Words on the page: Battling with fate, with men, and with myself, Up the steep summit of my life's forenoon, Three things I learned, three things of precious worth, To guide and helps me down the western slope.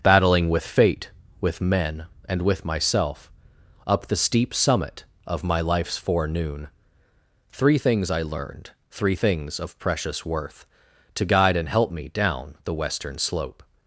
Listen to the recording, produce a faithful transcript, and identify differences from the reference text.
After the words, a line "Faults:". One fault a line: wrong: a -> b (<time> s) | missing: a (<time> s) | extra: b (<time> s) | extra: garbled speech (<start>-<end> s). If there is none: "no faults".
Battling with fate, with men, and with myself, Up the steep summit of my life's forenoon, Three things I learned, three things of precious worth, To guide and help me down the western slope.
Faults:
wrong: helps -> help (11.7 s)